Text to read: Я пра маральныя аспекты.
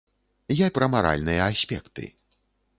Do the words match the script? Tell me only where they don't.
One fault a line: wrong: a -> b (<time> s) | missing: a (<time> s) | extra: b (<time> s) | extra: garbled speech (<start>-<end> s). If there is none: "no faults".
no faults